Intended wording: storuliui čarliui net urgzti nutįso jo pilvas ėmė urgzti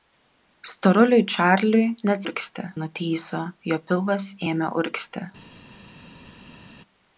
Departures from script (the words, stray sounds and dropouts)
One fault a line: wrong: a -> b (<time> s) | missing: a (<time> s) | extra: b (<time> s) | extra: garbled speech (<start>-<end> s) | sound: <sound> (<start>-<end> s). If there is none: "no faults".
no faults